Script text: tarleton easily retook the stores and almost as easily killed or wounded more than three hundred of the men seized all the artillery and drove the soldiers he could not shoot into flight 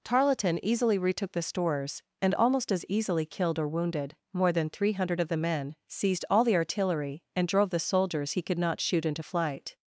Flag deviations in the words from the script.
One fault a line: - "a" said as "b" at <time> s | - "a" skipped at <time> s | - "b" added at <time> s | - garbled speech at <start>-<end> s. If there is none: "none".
none